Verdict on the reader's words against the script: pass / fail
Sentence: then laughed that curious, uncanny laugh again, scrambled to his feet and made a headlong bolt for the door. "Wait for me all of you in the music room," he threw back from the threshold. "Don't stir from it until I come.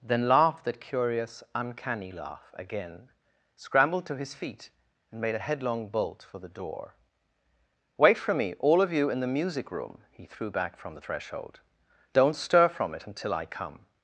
pass